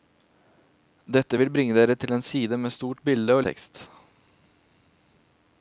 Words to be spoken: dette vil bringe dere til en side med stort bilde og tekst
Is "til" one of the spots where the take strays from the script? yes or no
no